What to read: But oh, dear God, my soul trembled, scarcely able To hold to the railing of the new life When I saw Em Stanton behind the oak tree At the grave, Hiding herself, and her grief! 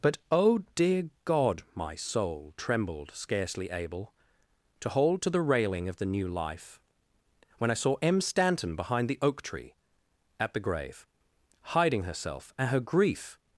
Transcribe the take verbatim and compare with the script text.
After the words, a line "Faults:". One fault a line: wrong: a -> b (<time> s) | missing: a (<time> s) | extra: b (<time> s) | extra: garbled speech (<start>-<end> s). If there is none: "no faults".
But oh, dear God, my soul trembled, scarcely able To hold to the railing of the new life When I saw Em Stanton behind the oak tree At the grave, Hiding herself, and her grief!
Faults:
no faults